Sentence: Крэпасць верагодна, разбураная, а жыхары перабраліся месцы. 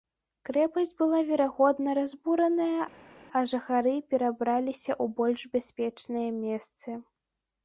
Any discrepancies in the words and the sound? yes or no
yes